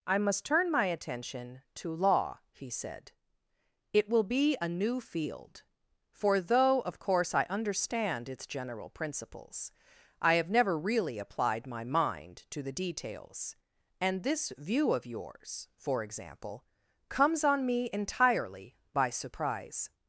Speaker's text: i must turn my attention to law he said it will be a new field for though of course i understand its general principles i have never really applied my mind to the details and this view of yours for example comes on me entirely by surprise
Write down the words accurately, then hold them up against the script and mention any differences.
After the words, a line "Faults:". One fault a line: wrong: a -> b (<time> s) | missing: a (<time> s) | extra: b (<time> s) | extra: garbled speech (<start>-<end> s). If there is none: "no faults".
i must turn my attention to law he said it will be a new field for though of course i understand its general principles i have never really applied my mind to the details and this view of yours for example comes on me entirely by surprise
Faults:
no faults